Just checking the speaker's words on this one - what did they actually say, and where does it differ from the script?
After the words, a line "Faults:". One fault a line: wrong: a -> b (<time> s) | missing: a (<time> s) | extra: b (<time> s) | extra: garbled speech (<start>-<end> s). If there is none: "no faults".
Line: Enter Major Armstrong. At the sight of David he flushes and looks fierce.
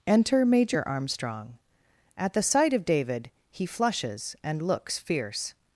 Enter Major Armstrong. At the sight of David he flushes and looks fierce.
Faults:
no faults